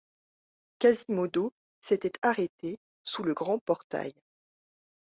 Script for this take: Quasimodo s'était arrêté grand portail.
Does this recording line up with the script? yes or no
no